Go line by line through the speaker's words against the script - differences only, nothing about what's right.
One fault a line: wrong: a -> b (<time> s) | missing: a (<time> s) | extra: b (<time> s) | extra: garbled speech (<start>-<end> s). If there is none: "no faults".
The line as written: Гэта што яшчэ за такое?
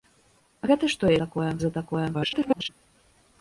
wrong: яшчэ -> такое (1.2 s)
extra: garbled speech (2.1-2.7 s)